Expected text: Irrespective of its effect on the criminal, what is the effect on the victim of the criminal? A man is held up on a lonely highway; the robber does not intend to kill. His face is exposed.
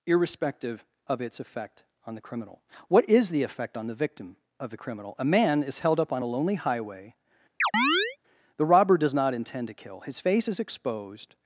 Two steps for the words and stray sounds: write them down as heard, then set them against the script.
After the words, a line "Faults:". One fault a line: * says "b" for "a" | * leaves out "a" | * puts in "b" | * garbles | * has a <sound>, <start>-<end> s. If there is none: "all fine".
Irrespective of its effect on the criminal, what is the effect on the victim of the criminal? A man is held up on a lonely highway; the robber does not intend to kill. His face is exposed.
Faults:
* has a chirp, 7.6-8.2 s